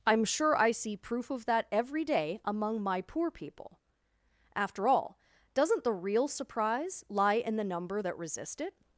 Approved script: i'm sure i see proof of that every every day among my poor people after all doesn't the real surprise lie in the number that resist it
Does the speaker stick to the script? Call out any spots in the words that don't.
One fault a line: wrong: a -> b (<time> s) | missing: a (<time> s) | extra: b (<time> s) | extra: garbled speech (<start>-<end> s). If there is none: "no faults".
missing: every (2.0 s)